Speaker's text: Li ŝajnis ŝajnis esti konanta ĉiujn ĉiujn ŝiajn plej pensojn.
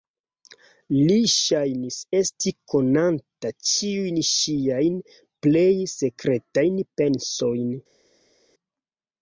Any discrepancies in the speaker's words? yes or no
yes